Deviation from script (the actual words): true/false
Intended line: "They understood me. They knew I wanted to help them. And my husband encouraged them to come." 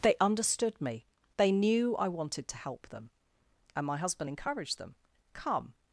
true